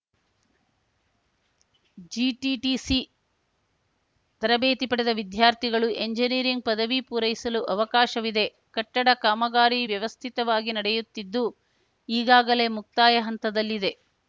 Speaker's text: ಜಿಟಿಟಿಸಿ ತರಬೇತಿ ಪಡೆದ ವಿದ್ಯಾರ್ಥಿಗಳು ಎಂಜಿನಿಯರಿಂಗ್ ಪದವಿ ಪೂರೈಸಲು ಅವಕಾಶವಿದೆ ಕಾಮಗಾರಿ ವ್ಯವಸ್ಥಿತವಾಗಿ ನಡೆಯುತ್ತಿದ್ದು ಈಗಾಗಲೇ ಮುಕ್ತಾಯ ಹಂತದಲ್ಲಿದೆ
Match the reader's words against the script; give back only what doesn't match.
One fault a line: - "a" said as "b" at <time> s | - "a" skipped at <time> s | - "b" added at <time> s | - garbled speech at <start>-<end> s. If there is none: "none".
- "ಕಟ್ಟಡ" added at 8.8 s